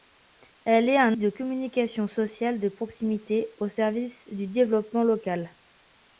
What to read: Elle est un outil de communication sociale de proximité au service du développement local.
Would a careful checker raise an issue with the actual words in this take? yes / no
yes